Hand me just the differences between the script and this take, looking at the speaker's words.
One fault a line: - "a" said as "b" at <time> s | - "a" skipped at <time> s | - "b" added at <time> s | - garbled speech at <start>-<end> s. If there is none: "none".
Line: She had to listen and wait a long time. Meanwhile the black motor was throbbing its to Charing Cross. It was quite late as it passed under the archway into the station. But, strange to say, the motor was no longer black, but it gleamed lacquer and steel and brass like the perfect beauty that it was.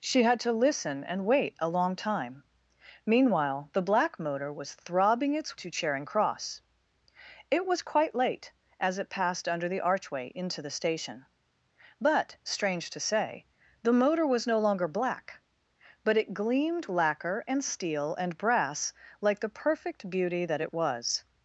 none